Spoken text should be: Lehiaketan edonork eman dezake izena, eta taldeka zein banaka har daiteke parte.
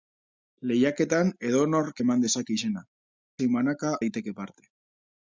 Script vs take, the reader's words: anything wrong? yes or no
yes